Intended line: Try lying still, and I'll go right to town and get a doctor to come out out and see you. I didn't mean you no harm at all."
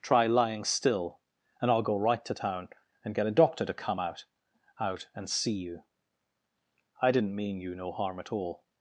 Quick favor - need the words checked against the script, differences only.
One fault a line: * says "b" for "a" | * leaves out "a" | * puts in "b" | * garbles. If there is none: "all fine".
all fine